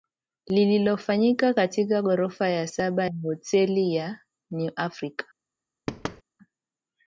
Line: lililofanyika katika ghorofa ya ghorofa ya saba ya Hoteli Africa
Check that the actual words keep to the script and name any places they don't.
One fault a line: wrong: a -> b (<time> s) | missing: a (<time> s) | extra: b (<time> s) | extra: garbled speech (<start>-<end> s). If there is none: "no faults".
wrong: ghorofa -> saba (2.6 s)
wrong: saba -> Hoteli (3.2 s)
wrong: Hoteli -> New (4.5 s)